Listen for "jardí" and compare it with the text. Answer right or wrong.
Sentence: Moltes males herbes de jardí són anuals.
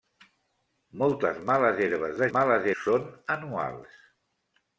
wrong